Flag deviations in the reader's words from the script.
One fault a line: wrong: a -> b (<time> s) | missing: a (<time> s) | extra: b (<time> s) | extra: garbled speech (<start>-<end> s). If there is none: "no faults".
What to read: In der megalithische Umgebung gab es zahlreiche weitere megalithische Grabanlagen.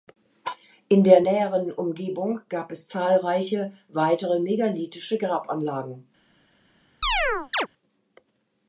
wrong: megalithische -> näheren (1.2 s)